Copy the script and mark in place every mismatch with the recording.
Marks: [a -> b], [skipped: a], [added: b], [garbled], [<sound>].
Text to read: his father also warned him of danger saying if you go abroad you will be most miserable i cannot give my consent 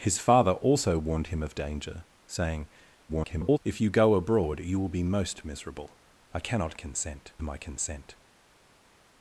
his father also warned him of danger saying [garbled] if you go abroad you will be most miserable i cannot [give -> consent] my consent